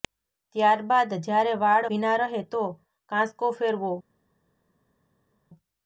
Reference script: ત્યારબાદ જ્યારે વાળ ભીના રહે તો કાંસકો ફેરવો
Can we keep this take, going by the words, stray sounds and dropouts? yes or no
yes